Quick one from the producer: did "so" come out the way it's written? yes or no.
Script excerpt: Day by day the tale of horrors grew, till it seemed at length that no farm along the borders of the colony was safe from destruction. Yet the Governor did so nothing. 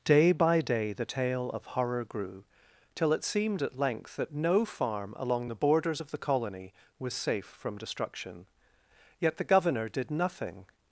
no